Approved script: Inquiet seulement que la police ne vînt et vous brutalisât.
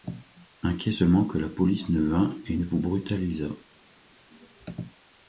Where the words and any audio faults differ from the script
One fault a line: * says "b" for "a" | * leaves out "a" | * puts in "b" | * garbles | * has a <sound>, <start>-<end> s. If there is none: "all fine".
* puts in "ne"